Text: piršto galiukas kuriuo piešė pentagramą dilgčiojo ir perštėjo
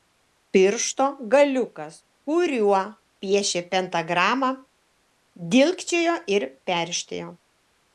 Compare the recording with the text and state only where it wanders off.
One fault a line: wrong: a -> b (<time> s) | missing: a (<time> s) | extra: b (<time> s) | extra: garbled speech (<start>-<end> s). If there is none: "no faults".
no faults